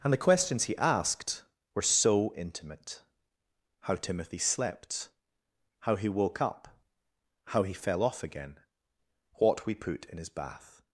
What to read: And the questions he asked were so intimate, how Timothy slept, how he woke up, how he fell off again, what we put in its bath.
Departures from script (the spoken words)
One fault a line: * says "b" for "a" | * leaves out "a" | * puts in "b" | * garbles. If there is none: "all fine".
* says "his" for "its"